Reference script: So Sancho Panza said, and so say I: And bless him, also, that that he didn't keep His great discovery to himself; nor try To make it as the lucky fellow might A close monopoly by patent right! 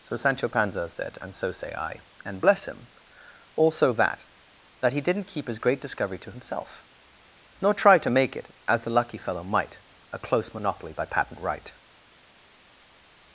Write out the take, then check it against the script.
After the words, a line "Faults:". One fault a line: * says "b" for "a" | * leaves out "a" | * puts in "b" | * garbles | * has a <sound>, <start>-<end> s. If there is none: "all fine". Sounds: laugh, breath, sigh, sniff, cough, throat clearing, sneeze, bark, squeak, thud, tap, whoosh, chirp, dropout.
So Sancho Panza said, and so say I: And bless him, also, that that he didn't keep His great discovery to himself; nor try To make it as the lucky fellow might A close monopoly by patent right!
Faults:
all fine